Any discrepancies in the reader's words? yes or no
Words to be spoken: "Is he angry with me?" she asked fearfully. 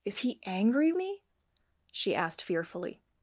yes